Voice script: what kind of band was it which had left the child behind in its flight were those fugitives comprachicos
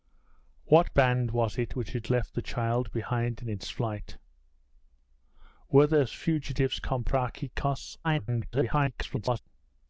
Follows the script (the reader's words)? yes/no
no